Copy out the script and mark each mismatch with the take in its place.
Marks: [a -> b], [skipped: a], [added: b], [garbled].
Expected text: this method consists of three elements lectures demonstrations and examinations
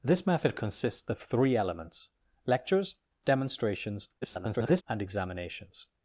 this method consists of three elements lectures demonstrations [garbled] and examinations